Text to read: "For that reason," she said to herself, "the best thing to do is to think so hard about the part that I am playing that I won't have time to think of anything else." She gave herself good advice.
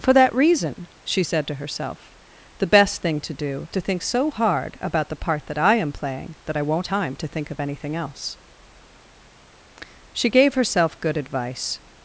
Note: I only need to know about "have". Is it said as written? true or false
false